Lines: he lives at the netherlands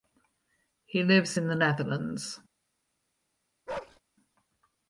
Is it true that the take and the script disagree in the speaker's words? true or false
true